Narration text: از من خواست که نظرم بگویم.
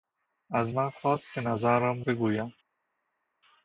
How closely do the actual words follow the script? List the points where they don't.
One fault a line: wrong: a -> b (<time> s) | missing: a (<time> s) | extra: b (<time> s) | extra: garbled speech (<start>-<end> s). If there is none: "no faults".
no faults